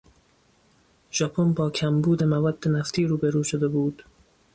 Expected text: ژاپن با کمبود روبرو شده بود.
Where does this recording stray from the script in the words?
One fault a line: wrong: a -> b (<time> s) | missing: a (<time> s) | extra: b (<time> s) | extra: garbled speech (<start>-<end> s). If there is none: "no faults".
extra: مواد نفتی (2.2 s)